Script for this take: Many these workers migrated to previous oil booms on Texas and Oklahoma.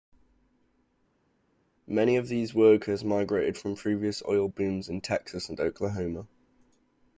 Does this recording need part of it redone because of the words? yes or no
yes